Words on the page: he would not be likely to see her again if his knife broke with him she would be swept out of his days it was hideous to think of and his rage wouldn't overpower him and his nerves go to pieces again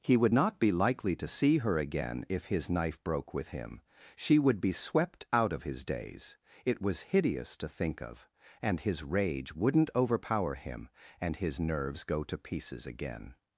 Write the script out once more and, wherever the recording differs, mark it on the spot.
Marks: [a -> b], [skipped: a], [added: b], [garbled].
he would not be likely to see her again if his knife broke with him she would be swept out of his days it was hideous to think of and his rage wouldn't overpower him and his nerves go to pieces again